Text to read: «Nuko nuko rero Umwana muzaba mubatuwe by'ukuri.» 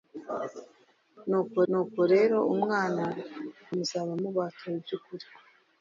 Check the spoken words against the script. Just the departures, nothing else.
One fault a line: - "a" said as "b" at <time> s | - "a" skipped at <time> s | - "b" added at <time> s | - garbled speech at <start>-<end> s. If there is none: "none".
none